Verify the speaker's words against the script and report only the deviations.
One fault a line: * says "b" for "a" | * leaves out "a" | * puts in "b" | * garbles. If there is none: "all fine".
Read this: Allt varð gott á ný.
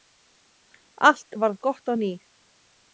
all fine